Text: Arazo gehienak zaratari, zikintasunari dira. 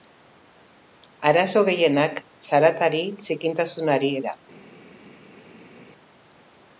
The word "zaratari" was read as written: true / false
true